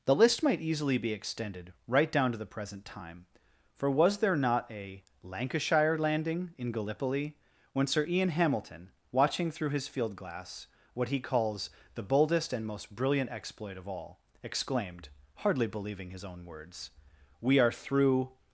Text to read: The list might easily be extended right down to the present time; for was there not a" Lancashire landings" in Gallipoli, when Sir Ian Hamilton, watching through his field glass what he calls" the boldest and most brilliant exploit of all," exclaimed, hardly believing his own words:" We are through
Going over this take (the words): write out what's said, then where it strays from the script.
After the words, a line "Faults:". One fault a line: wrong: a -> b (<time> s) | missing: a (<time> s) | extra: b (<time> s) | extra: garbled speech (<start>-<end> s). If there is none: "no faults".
The list might easily be extended right down to the present time; for was there not a" Lancashire landing" in Gallipoli, when Sir Ian Hamilton, watching through his field glass what he calls" the boldest and most brilliant exploit of all," exclaimed, hardly believing his own words:" We are through
Faults:
wrong: landings -> landing (6.0 s)